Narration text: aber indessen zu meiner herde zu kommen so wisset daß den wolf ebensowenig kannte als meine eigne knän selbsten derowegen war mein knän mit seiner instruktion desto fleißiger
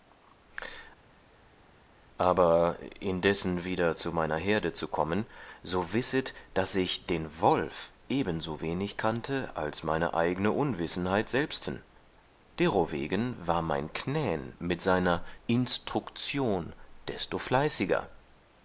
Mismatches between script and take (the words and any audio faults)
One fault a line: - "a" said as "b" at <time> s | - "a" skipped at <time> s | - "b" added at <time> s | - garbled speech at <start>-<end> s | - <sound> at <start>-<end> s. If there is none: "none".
- "wieder" added at 3.6 s
- "ich" added at 6.7 s
- "knän" said as "unwissenheit" at 10.5 s